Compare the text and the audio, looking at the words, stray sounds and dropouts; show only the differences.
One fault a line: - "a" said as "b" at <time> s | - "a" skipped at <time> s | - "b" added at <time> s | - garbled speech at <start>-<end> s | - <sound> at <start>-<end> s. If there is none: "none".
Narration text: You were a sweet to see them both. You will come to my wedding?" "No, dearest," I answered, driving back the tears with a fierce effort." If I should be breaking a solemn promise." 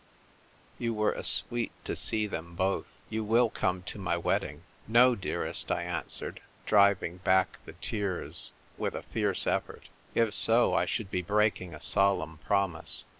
- "so" added at 10.3 s